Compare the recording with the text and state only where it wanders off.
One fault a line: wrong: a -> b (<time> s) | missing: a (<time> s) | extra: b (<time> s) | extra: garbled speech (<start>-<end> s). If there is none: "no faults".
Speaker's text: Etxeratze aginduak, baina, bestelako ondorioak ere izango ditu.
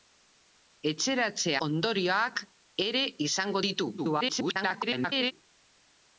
missing: aginduak baina bestelako (1.5 s)
extra: garbled speech (4.0-5.3 s)